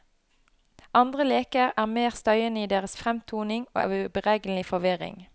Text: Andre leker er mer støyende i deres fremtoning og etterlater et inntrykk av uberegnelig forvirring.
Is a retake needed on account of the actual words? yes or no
yes